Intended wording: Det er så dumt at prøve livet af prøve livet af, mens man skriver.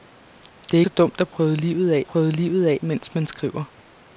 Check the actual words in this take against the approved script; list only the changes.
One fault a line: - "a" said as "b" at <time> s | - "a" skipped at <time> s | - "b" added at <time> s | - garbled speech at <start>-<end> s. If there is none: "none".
none